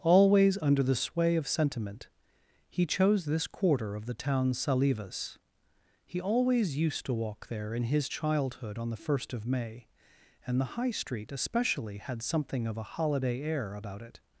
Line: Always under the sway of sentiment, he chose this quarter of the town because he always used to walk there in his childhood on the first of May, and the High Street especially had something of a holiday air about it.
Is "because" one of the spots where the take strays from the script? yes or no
yes